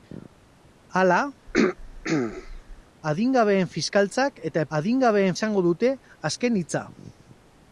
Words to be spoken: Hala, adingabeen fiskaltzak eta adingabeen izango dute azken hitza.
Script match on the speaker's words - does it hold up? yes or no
yes